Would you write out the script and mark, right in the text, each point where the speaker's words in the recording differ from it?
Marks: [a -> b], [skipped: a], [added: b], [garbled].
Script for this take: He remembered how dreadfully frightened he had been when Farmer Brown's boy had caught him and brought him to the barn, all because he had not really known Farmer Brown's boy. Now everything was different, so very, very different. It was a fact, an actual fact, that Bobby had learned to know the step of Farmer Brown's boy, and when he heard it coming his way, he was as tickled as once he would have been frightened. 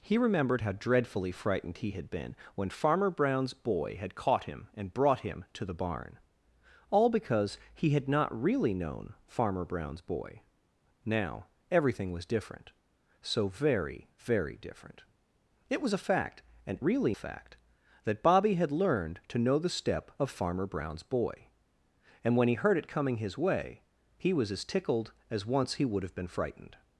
He remembered how dreadfully frightened he had been when Farmer Brown's boy had caught him and brought him to the barn, all because he had not really known Farmer Brown's boy. Now everything was different, so very, very different. It was a fact, an [actual -> really] fact, that Bobby had learned to know the step of Farmer Brown's boy, and when he heard it coming his way, he was as tickled as once he would have been frightened.